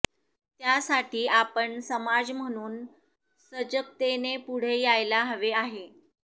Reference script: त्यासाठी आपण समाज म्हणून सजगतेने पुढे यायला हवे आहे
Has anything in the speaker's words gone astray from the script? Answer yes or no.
no